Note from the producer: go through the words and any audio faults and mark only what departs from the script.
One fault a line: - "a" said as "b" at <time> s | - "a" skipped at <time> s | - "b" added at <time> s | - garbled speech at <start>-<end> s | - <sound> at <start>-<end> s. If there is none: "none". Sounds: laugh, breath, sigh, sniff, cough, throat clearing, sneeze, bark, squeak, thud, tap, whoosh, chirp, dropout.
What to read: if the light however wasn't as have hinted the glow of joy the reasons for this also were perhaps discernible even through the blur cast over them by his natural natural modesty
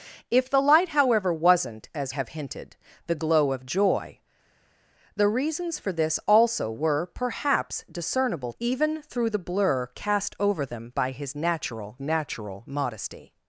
none